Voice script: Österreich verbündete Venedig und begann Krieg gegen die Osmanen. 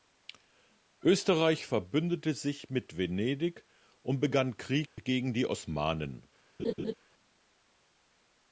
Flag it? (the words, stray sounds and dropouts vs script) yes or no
yes